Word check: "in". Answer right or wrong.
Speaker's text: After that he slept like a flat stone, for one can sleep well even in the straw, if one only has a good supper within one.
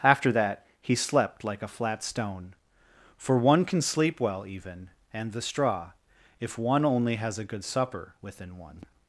wrong